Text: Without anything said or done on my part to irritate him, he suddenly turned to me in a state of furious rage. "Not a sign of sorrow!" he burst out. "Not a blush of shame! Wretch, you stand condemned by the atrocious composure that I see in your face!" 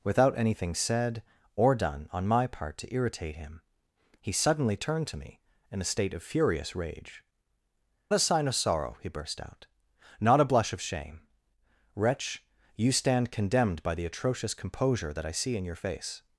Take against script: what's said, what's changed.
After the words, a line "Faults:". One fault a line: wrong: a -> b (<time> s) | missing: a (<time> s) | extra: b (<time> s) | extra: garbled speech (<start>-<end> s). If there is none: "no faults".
Without anything said or done on my part to irritate him, he suddenly turned to me in a state of furious rage. "A sign of sorrow!" he burst out. "Not a blush of shame! Wretch, you stand condemned by the atrocious composure that I see in your face!"
Faults:
missing: Not (7.2 s)